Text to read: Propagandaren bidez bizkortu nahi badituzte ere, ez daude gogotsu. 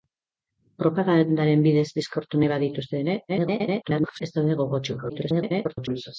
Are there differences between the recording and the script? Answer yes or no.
yes